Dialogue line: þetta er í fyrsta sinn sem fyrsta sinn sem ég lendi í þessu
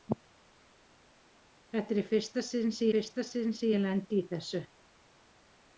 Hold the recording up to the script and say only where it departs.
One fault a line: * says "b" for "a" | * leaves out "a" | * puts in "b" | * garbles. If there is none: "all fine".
all fine